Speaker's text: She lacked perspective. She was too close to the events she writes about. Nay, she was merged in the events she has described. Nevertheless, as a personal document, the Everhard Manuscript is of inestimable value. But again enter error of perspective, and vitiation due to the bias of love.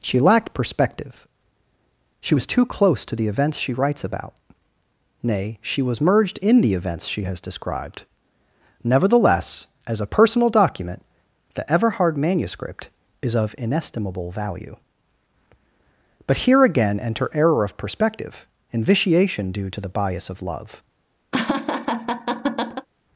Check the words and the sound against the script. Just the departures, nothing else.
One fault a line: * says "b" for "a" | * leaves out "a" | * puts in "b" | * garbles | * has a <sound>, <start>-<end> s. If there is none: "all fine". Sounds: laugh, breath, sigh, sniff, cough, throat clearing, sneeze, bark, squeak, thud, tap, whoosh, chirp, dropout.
* puts in "here"
* has a laugh, 21.3-22.9 s